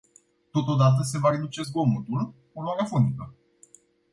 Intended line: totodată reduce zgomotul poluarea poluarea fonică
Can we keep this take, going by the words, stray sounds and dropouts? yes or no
no